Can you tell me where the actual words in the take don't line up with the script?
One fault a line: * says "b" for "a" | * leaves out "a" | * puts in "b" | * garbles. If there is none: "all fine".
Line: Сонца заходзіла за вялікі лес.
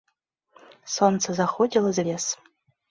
* leaves out "вялікі"